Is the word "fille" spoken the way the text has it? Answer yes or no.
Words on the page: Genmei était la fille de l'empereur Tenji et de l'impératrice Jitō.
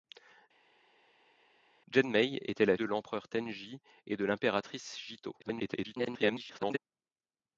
no